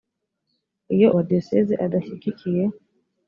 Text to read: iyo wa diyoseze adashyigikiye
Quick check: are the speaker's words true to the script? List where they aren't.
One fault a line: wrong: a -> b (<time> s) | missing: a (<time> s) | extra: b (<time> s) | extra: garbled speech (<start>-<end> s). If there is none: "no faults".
no faults